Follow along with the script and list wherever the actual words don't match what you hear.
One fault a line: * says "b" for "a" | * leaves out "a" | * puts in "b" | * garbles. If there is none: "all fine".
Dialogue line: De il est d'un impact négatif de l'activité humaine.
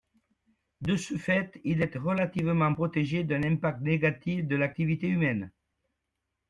* puts in "ce fait"
* puts in "relativement protégé"